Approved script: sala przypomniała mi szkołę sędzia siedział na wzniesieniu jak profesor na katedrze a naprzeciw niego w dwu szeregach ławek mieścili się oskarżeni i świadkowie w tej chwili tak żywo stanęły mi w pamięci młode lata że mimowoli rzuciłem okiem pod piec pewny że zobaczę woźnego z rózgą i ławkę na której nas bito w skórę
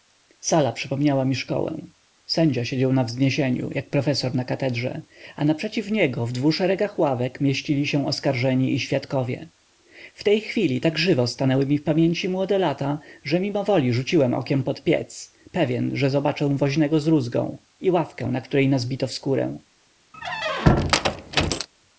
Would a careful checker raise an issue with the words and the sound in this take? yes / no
yes